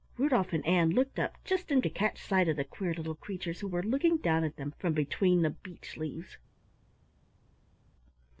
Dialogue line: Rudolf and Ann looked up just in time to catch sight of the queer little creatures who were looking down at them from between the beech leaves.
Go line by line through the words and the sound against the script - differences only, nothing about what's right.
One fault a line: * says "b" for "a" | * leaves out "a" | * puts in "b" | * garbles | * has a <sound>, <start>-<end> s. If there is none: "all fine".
* leaves out "time"